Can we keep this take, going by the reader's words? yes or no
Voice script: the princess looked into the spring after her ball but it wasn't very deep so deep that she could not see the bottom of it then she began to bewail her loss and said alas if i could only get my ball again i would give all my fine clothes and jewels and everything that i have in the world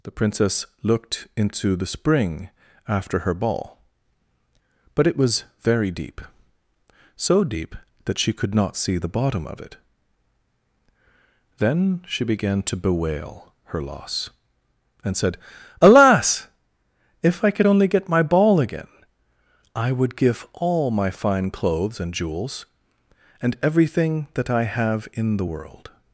no